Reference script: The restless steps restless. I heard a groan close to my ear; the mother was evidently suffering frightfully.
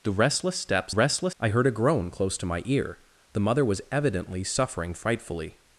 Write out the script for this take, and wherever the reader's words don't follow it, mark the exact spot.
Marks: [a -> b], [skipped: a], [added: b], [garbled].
The restless steps restless. I heard a groan close to my ear; the mother was evidently suffering frightfully.